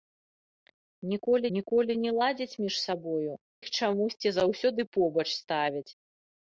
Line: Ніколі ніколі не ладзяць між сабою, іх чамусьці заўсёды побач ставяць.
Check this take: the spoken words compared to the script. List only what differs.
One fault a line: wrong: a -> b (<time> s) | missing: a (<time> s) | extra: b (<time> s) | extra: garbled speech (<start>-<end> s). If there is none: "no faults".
no faults